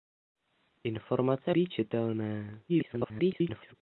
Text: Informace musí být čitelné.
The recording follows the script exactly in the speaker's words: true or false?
false